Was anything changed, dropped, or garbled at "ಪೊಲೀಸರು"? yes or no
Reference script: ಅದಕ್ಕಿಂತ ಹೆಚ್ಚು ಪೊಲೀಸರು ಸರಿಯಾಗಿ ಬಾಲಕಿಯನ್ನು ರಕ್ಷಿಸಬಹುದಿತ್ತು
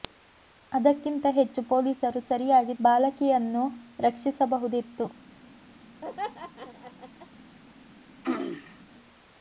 no